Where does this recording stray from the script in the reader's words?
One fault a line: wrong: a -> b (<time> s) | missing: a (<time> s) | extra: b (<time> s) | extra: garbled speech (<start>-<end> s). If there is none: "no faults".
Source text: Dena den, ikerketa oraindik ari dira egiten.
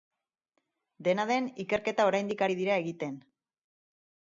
no faults